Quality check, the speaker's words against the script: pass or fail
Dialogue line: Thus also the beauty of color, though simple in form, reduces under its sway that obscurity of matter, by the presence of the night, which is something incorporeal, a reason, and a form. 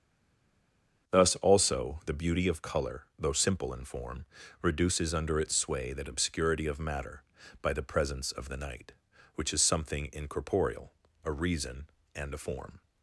pass